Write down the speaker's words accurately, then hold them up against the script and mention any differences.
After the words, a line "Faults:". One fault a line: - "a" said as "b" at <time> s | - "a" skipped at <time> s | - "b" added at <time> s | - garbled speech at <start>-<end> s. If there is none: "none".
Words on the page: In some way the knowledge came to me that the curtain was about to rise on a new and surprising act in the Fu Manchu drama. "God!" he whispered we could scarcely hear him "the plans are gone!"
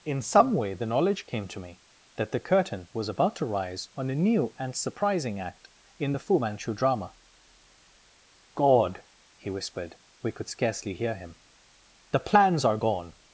In some way the knowledge came to me that the curtain was about to rise on a new and surprising act in the Fu Manchu drama. "God!" he whispered we could scarcely hear him "the plans are gone!"
Faults:
none